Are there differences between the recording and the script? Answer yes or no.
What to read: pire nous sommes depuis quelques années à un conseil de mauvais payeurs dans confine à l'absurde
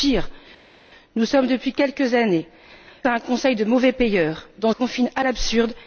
no